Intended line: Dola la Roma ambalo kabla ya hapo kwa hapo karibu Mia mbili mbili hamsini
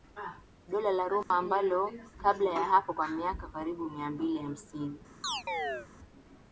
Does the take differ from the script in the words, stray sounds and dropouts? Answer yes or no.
yes